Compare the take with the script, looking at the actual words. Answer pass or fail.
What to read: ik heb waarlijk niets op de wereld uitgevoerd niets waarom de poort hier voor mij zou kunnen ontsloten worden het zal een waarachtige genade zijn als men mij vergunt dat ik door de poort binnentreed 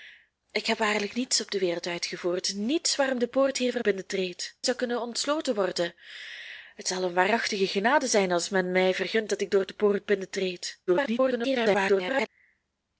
fail